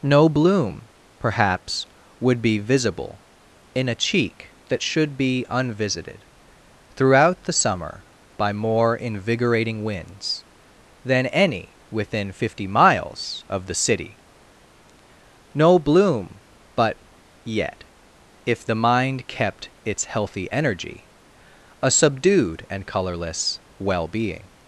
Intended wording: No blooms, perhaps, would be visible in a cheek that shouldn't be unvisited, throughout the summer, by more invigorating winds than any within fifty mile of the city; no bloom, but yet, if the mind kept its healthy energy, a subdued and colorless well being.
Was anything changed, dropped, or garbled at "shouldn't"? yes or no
yes